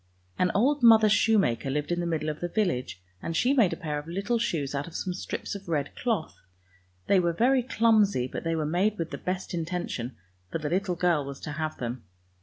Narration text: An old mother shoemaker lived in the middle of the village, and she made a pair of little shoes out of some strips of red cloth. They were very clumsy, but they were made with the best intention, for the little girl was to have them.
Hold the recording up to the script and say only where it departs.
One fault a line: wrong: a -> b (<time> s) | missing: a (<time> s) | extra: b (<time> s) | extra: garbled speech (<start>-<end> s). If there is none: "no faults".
no faults